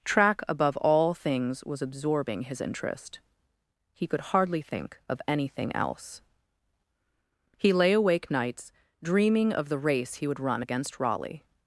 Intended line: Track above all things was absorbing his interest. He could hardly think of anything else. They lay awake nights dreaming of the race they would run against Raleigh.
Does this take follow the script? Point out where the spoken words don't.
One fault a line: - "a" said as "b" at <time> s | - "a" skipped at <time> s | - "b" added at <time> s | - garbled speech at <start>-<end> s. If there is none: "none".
- "They" said as "He" at 7.6 s
- "they" said as "he" at 10.1 s